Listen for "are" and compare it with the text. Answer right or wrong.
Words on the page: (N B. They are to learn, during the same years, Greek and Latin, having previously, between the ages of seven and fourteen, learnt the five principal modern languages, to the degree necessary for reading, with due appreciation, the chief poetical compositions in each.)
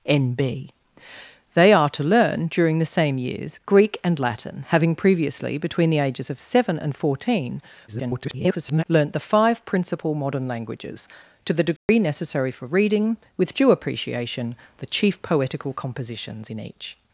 right